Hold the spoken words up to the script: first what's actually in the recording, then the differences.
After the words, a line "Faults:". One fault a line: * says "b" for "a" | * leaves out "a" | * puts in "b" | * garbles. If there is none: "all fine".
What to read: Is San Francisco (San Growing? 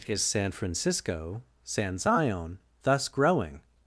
Is San Francisco (San Zion) thus growing?
Faults:
* puts in "Zion thus"